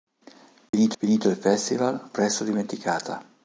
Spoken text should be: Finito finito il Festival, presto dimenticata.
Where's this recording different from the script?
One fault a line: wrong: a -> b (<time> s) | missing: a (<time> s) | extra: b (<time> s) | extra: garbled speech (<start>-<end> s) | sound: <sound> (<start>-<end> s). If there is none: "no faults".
sound: dropout (0.7-0.7 s)